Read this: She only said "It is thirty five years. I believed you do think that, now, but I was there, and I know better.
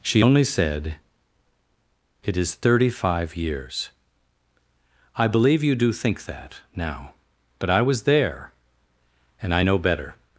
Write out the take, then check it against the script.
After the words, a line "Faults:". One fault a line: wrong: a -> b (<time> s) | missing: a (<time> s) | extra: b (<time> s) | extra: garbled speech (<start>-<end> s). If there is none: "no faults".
She only said "It is thirty five years. I believe you do think that, now, but I was there, and I know better.
Faults:
wrong: believed -> believe (5.3 s)